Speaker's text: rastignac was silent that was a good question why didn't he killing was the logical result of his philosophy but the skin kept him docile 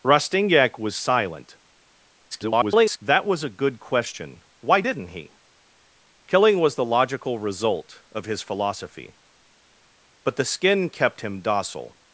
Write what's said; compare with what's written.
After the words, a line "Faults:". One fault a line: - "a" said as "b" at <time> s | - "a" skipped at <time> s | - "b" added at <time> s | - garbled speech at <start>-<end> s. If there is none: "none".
rastignac was silent [garbled] that was a good question why didn't he killing was the logical result of his philosophy but the skin kept him docile
Faults:
- garbled speech at 2.3-3.0 s